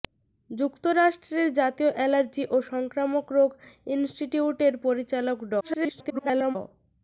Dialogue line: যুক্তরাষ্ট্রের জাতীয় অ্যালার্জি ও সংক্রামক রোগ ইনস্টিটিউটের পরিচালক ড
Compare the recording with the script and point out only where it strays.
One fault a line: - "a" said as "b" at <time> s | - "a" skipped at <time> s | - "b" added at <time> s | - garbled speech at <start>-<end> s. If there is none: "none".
- garbled speech at 5.6-6.6 s